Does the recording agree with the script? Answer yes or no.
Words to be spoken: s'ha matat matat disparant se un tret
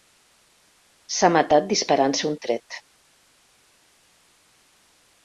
no